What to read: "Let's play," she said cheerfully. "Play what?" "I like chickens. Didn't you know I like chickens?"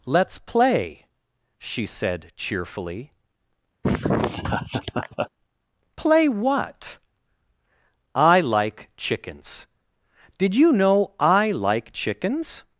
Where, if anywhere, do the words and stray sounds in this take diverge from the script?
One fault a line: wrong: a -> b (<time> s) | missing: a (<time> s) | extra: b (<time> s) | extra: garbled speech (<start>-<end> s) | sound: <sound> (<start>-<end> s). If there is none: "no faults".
sound: laugh (3.8-5.3 s)
wrong: Didn't -> Did (10.4 s)